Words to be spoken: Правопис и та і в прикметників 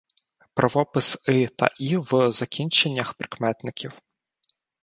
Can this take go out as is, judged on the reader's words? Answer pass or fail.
fail